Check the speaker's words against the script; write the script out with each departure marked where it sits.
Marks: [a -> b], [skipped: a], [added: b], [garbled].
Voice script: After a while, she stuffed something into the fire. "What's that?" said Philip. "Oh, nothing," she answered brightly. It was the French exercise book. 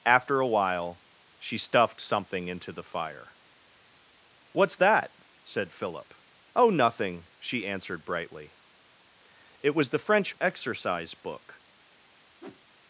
After a while, she stuffed something into the fire. "What's that?" said Philip. "Oh, nothing," she answered brightly. It was the French exercise book.